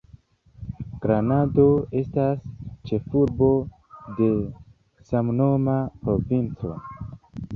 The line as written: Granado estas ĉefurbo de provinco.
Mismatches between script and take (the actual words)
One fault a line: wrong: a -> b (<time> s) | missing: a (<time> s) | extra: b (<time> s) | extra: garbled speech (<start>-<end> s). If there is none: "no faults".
extra: samnoma (5.1 s)